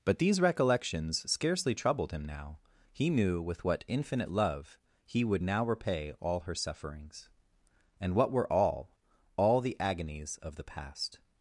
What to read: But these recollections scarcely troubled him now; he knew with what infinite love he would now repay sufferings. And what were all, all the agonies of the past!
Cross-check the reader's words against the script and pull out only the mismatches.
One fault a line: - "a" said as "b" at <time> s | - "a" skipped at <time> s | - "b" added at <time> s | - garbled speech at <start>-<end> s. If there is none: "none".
- "all her" added at 6.2 s